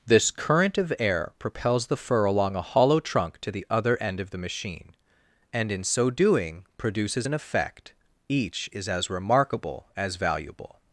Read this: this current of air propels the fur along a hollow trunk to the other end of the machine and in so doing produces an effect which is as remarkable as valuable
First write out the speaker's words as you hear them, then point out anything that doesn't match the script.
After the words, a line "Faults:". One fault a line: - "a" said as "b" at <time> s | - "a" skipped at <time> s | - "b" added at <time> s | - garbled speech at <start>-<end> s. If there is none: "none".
this current of air propels the fur along a hollow trunk to the other end of the machine and in so doing produces an effect each is as remarkable as valuable
Faults:
- "which" said as "each" at 8.3 s